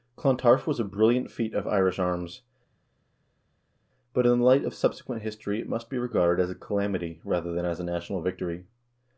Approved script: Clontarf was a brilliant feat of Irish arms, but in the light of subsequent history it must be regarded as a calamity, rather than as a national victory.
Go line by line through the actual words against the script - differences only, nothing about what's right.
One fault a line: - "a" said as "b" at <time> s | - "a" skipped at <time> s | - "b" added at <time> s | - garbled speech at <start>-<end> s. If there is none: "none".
none